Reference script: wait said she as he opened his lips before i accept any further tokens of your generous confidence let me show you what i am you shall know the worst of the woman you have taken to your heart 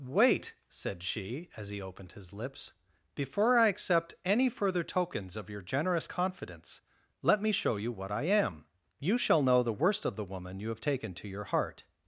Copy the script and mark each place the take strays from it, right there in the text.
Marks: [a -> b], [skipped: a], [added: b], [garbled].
wait said she as he opened his lips before i accept any further tokens of your generous confidence let me show you what i am you shall know the worst of the woman you have taken to your heart